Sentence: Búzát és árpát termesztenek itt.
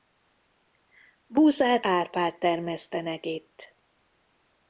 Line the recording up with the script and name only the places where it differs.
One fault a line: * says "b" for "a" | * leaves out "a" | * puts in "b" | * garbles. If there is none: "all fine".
* leaves out "és"